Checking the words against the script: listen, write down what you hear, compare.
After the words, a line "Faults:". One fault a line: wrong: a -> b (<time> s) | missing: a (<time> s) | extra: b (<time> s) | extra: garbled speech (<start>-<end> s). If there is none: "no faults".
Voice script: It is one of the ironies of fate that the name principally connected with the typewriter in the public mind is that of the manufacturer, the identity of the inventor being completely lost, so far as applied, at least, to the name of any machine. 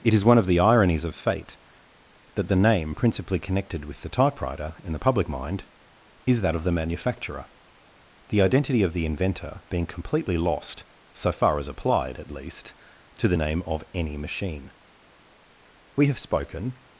It is one of the ironies of fate that the name principally connected with the typewriter in the public mind is that of the manufacturer, the identity of the inventor being completely lost, so far as applied, at least, to the name of any machine. We have spoken
Faults:
extra: We have spoken (16.0 s)